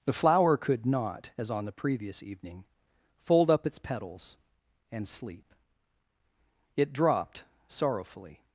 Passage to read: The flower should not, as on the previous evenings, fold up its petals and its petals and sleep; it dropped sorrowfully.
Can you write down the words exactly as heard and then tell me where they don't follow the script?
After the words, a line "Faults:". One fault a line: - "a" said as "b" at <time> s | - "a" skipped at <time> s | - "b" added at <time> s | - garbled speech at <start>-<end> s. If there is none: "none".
The flower could not, as on the previous evening, fold up its petals and sleep; it dropped sorrowfully.
Faults:
- "should" said as "could" at 0.6 s
- "evenings" said as "evening" at 2.2 s
- "its petals and" skipped at 5.1 s